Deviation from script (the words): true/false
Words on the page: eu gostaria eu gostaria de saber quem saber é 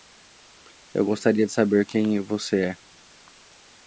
true